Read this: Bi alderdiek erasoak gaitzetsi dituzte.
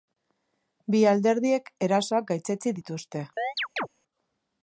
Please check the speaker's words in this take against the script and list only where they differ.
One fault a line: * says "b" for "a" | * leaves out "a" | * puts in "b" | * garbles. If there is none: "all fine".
all fine